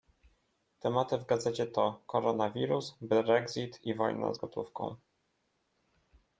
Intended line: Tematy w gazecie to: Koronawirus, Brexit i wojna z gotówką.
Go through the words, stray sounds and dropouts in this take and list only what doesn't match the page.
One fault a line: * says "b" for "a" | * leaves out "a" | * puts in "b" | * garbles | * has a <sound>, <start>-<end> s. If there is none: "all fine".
all fine